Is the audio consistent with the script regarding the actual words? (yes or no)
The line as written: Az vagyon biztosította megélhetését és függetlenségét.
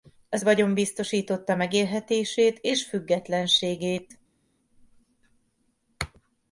yes